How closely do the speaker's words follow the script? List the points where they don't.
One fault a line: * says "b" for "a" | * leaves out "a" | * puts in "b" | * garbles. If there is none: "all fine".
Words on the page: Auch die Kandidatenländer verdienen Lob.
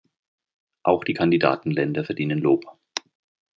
all fine